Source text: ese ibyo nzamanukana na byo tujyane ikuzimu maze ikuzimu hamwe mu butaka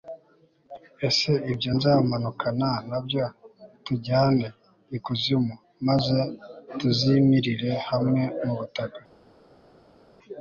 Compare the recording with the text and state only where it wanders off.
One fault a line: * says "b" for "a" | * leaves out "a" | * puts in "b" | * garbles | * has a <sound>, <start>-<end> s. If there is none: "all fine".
* says "tuzimirire" for "ikuzimu"